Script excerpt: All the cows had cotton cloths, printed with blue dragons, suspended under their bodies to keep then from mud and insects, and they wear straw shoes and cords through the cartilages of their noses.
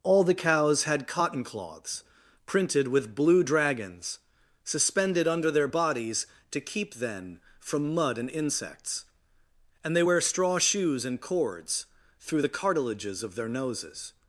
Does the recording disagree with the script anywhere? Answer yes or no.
no